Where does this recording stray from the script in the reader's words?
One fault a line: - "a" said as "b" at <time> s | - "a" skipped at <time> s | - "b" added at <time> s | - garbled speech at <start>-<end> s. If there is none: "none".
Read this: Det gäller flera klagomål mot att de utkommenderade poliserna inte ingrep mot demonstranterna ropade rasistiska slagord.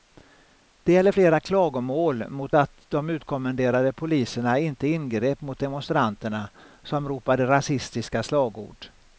- "som" added at 6.8 s